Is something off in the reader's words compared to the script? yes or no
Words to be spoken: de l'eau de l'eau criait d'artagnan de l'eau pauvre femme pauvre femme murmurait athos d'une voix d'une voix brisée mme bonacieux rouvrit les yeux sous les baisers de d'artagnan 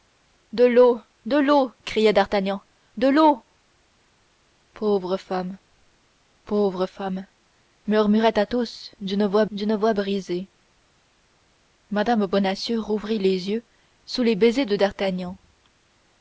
no